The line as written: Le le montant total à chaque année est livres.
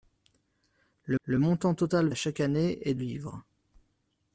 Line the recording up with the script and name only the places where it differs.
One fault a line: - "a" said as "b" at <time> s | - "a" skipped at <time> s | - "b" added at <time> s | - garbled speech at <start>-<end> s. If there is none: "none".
none